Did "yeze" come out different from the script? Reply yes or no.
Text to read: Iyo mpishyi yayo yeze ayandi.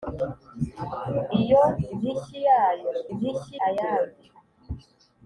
yes